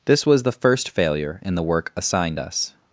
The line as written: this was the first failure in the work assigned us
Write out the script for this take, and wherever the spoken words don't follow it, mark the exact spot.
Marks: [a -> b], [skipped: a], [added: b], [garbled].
this was the first failure in the work assigned us